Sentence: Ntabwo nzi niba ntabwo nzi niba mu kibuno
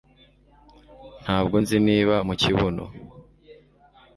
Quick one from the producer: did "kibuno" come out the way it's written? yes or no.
yes